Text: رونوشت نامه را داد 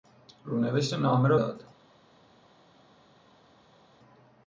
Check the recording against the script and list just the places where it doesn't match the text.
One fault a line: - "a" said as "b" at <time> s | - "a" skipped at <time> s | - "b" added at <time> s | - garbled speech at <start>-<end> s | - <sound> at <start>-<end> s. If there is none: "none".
none